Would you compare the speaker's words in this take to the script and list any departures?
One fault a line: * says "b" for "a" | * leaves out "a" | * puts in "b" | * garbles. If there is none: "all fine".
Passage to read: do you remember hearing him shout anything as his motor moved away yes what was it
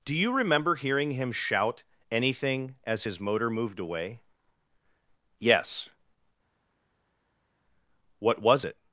all fine